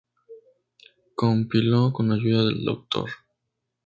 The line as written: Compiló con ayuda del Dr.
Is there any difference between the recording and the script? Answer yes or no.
no